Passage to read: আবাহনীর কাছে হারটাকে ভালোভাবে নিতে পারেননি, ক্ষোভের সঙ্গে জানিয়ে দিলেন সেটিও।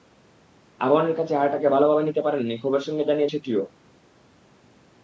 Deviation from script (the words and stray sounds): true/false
true